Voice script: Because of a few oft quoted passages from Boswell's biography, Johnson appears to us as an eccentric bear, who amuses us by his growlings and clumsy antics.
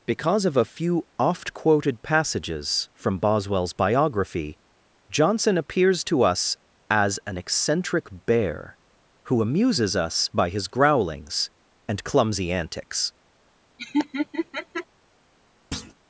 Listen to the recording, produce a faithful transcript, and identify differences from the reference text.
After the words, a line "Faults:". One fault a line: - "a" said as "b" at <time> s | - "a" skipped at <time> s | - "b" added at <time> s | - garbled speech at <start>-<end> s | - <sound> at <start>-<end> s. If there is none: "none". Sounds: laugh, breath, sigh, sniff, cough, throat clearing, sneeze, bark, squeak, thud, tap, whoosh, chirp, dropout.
Because of a few oft quoted passages from Boswell's biography, Johnson appears to us as an eccentric bear, who amuses us by his growlings and clumsy antics.
Faults:
- laugh at 13.8-14.9 s
- thud at 15.7-15.9 s